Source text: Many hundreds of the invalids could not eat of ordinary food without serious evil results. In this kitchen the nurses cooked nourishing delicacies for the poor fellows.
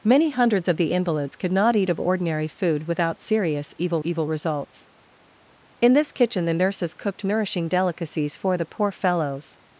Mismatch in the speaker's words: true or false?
true